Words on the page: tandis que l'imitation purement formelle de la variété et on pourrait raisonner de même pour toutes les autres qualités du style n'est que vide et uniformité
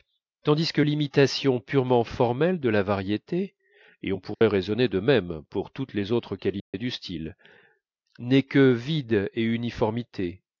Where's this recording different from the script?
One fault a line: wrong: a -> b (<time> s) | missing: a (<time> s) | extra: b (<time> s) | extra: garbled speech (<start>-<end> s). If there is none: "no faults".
no faults